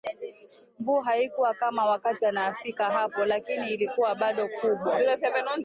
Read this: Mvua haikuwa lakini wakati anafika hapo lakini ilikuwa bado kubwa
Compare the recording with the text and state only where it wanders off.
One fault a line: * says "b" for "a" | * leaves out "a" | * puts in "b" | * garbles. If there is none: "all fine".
* says "kama" for "lakini"